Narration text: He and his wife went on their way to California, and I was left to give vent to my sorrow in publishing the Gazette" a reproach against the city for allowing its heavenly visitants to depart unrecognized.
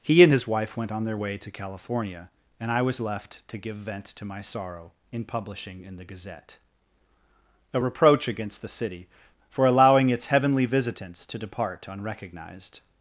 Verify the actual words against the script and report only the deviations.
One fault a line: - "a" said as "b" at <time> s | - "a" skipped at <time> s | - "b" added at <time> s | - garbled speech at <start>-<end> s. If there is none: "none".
- "in" added at 5.8 s